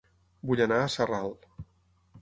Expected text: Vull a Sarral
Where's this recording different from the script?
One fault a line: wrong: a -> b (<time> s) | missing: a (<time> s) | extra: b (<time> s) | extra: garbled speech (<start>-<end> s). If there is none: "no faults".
extra: anar (0.7 s)